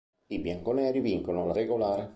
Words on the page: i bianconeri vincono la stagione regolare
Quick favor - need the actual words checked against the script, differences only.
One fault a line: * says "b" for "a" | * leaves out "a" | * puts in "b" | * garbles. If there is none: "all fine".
* leaves out "stagione"